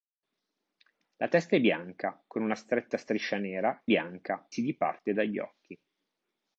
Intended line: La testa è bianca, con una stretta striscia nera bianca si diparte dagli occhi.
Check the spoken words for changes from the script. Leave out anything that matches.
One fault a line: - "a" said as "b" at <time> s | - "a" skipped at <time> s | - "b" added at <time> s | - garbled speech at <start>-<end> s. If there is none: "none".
none